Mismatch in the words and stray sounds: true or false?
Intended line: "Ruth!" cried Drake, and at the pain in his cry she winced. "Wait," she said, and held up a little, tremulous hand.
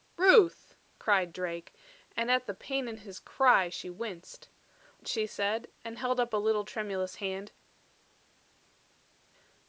true